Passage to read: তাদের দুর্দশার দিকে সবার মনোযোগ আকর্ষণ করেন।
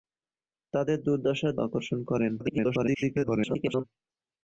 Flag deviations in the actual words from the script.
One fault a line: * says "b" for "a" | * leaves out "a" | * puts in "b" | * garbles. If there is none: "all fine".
* leaves out "দিকে সবার মনোযোগ"
* garbles